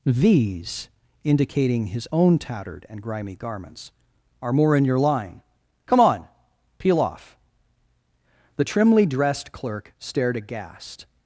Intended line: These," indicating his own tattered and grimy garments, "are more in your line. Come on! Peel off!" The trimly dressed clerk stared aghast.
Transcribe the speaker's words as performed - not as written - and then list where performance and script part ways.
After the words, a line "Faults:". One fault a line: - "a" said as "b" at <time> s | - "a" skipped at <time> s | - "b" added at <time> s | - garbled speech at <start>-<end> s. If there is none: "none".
These," indicating his own tattered and grimy garments, "are more in your line. Come on! Peel off!" The trimly dressed clerk stared aghast.
Faults:
none